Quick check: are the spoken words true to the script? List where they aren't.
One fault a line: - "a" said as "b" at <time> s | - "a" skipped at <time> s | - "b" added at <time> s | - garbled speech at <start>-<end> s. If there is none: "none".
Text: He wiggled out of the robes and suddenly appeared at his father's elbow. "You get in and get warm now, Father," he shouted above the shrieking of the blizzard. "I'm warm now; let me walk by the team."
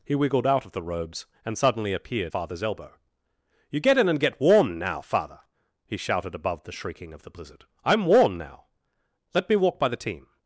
- "at his" skipped at 2.3 s